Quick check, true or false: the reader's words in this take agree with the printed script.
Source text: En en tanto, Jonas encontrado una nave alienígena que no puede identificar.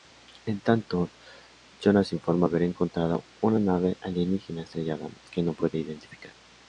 false